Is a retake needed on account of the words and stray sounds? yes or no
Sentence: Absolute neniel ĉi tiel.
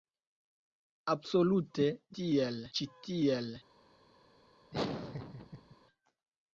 yes